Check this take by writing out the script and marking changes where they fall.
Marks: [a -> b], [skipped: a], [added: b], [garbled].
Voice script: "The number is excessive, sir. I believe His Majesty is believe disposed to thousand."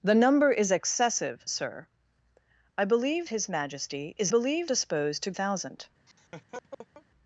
"The number is excessive, sir. I believe His Majesty is believe disposed to thousand."